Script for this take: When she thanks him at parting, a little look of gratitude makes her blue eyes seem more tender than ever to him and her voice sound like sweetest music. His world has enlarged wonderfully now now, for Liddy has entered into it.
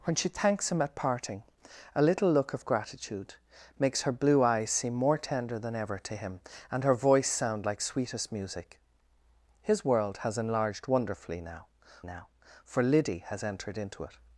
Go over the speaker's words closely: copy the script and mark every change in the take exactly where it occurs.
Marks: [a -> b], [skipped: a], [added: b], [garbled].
When she thanks him at parting, a little look of gratitude makes her blue eyes seem more tender than ever to him and her voice sound like sweetest music. His world has enlarged wonderfully now now, for Liddy has entered into it.